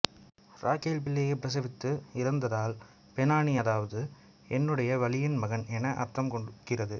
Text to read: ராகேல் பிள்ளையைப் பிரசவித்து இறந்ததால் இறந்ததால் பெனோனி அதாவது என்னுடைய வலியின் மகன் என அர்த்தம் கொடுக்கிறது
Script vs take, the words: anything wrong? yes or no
yes